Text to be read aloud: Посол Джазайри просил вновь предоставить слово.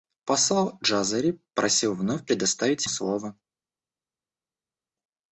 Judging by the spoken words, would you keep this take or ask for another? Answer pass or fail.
pass